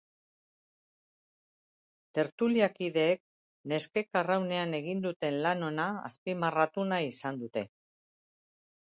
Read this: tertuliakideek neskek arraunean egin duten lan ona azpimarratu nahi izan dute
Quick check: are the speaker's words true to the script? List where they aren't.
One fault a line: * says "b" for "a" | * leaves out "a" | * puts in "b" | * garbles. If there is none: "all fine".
all fine